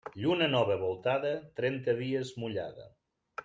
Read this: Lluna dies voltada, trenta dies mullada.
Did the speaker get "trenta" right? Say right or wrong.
right